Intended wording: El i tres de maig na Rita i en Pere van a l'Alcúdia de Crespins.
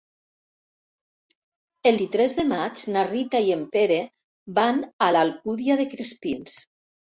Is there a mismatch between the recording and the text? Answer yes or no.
no